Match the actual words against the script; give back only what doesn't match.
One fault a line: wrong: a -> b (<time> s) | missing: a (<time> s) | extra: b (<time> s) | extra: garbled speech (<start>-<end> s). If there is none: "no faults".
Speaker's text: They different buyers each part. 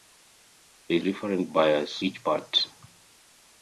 no faults